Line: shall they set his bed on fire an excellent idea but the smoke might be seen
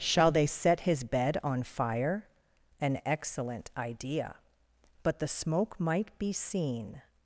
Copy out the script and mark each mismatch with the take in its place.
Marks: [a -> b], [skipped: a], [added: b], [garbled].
shall they set his bed on fire an excellent idea but the smoke might be seen